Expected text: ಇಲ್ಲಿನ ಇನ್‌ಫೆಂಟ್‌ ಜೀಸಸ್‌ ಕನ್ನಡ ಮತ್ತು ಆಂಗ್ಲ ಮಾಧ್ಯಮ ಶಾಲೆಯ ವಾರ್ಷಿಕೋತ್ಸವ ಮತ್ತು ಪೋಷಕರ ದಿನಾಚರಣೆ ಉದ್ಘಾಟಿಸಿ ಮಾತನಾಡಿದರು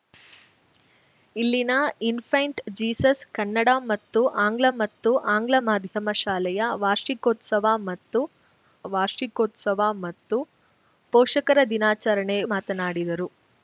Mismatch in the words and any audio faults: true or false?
true